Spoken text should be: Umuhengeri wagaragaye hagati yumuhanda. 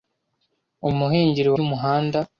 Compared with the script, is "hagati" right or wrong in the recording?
wrong